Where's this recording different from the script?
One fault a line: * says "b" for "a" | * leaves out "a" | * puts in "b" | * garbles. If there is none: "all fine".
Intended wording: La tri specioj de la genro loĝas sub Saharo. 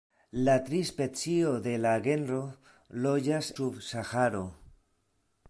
all fine